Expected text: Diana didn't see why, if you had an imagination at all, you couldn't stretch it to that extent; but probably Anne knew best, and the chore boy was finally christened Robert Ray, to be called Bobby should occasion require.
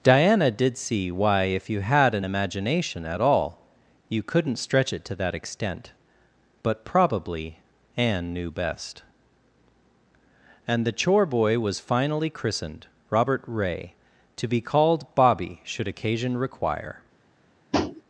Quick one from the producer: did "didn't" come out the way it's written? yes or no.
no